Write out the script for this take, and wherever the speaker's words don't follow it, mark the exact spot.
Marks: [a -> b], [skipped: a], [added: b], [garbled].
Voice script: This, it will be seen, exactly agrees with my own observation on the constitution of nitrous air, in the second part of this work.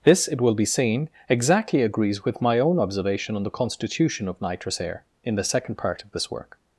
This, it will be seen, exactly agrees with my own observation on the constitution of nitrous air, in the second part of this work.